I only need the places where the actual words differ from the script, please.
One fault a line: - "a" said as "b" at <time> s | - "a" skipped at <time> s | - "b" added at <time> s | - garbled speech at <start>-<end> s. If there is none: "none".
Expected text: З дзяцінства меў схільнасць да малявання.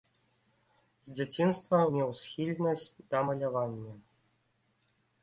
none